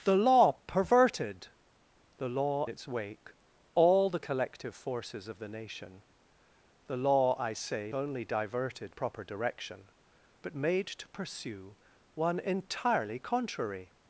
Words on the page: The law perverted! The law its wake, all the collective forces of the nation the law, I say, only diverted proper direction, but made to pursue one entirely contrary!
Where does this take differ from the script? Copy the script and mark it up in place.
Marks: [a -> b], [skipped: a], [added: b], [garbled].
The law perverted! The law its wake, all the collective forces of the nation the law, I say, only diverted proper direction, but made to pursue one entirely contrary!